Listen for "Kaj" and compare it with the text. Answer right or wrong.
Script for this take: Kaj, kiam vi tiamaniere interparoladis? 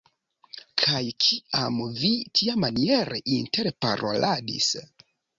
right